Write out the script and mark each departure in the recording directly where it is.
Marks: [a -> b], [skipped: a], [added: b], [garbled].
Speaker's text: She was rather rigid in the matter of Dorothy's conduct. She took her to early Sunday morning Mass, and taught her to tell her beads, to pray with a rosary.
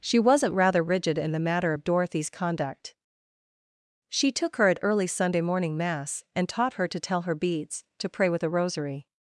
She [was -> wasn't] rather rigid in the matter of Dorothy's conduct. She took her [to -> at] early Sunday morning Mass, and taught her to tell her beads, to pray with a rosary.